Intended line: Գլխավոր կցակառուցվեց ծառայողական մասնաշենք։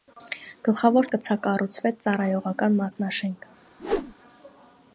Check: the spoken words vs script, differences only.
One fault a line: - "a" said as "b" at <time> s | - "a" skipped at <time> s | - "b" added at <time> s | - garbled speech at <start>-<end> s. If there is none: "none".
none